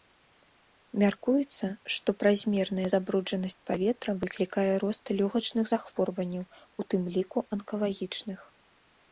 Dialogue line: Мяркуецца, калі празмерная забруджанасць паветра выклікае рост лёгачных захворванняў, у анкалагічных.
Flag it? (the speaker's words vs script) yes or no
yes